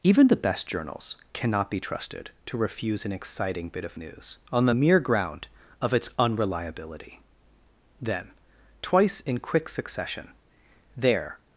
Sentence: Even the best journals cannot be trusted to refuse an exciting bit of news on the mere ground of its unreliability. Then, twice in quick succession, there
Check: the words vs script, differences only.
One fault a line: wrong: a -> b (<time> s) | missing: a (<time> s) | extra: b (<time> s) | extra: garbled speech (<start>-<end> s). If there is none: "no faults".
no faults